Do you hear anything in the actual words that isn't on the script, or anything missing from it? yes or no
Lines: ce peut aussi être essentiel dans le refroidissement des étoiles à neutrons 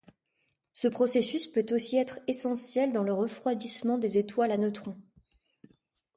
yes